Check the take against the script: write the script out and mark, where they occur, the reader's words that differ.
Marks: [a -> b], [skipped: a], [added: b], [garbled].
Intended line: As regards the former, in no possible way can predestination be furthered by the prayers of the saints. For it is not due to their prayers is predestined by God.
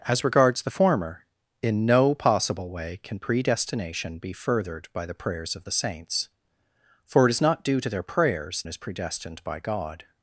As regards the former, in no possible way can predestination be furthered by the prayers of the saints. For it is not due to their prayers is predestined by God.